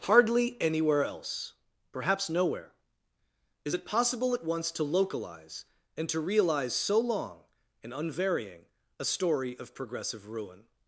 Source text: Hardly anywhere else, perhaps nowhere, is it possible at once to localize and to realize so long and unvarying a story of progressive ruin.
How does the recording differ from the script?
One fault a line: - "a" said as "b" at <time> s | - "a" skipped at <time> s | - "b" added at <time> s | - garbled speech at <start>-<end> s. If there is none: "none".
none